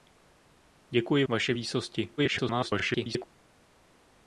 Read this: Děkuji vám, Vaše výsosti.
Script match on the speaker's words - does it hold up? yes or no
no